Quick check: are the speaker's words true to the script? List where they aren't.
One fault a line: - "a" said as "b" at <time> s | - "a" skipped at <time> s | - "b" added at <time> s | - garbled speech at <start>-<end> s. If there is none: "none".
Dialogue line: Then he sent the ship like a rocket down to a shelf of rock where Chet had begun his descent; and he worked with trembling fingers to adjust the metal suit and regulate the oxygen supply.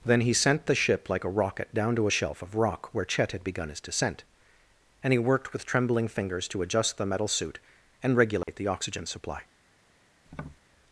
none